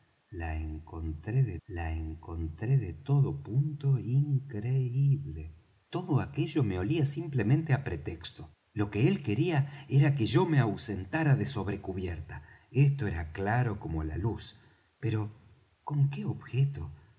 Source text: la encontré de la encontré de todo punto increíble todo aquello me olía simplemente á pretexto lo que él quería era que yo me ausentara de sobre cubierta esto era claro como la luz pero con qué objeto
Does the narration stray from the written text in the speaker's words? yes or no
no